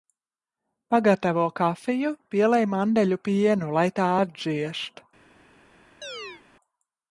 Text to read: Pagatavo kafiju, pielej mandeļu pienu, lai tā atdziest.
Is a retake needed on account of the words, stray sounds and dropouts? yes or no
yes